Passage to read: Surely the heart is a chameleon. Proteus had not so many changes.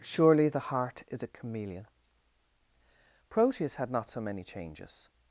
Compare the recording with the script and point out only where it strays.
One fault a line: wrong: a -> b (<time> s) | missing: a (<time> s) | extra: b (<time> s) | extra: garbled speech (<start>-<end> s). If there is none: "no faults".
no faults